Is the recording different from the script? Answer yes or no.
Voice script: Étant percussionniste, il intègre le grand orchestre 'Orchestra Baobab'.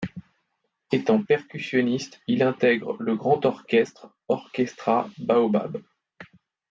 no